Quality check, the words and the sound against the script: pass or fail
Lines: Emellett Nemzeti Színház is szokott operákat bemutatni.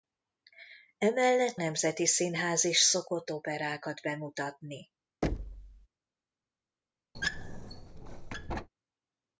fail